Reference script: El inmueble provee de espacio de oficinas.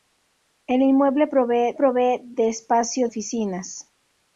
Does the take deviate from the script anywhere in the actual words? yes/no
yes